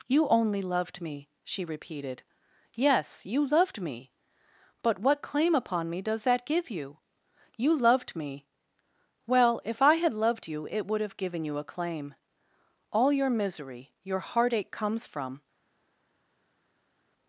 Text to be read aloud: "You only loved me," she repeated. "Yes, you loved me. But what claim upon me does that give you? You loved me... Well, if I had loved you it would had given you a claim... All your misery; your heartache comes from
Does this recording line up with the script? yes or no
no